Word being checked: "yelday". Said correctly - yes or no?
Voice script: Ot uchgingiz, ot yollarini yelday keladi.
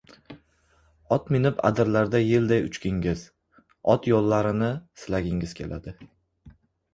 no